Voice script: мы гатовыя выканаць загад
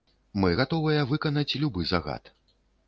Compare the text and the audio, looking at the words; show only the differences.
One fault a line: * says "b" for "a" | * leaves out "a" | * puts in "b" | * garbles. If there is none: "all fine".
* puts in "любы"